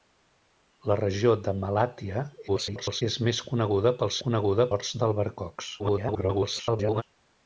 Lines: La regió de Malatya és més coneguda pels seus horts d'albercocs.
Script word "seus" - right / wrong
wrong